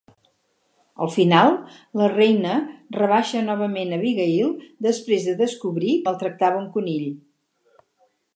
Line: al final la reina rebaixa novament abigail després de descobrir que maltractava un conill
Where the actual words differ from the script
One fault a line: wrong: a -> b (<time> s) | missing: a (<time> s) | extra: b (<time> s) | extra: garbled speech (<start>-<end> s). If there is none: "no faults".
missing: que (6.0 s)